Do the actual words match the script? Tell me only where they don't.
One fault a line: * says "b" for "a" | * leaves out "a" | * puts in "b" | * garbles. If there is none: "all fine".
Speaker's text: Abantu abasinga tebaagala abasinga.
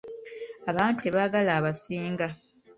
* leaves out "abasinga"